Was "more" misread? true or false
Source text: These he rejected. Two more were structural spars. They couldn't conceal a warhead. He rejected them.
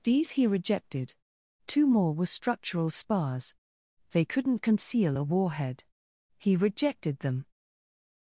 false